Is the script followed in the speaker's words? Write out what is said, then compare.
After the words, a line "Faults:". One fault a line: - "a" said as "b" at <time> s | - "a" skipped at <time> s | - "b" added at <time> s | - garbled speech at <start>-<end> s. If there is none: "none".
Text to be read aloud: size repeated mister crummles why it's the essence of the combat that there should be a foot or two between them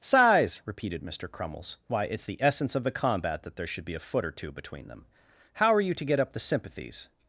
size repeated mister crummles why it's the essence of the combat that there should be a foot or two between them how are you to get up the sympathies
Faults:
- "how are you to get up the sympathies" added at 5.5 s